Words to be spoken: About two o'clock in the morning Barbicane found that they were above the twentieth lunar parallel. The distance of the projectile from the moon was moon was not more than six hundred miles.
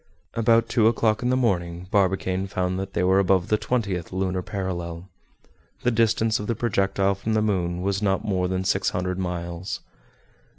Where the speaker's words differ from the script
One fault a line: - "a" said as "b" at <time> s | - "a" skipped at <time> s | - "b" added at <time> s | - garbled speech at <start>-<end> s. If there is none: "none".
- "moon was" skipped at 8.0 s